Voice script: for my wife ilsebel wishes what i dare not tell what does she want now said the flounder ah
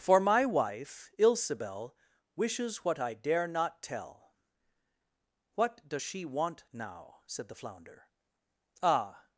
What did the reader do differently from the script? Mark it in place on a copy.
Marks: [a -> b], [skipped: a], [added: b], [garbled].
for my wife ilsebel wishes what i dare not tell what does she want now said the flounder ah